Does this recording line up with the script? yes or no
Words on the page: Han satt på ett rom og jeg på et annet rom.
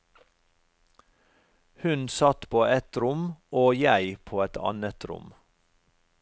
no